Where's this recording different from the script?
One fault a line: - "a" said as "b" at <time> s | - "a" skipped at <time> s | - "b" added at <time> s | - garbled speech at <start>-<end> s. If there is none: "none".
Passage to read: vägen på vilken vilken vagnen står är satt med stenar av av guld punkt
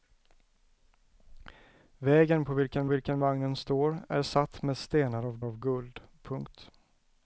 none